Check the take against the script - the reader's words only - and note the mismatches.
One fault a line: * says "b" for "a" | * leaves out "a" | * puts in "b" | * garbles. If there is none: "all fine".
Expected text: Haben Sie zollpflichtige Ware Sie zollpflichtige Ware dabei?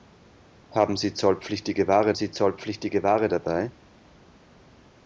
all fine